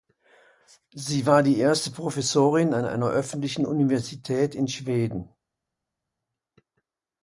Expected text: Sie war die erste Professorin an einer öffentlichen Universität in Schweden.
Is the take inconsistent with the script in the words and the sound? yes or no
no